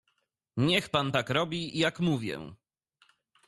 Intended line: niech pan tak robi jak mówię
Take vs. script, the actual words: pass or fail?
pass